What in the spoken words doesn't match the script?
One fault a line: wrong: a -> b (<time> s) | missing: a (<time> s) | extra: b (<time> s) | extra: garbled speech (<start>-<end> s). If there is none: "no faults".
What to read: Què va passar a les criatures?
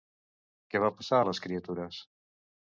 no faults